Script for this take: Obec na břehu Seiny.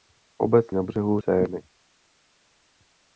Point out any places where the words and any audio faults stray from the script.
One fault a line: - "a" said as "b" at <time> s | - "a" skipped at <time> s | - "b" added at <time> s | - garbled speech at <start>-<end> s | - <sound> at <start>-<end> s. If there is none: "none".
none